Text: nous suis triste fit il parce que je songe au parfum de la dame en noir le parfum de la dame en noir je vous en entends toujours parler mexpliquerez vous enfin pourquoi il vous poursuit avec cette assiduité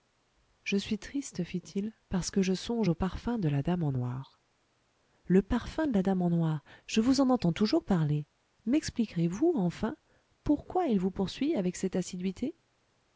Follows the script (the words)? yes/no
no